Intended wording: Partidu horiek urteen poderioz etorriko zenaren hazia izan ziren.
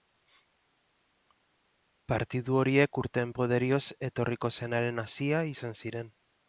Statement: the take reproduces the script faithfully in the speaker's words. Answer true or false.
true